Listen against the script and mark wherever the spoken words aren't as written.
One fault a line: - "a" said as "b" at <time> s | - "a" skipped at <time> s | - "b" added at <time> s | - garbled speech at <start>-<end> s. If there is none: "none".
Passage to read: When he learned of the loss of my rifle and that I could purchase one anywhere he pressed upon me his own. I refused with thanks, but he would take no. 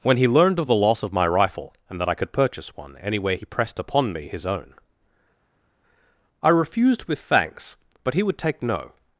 none